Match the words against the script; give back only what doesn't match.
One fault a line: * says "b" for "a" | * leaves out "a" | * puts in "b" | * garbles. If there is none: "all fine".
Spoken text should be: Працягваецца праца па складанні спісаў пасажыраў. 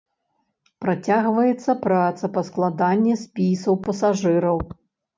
all fine